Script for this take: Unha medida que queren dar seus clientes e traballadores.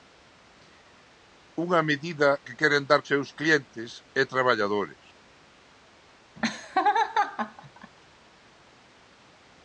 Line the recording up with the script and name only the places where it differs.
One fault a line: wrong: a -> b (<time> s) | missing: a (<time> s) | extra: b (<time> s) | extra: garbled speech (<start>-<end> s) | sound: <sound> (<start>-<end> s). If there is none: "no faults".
sound: laugh (6.4-7.9 s)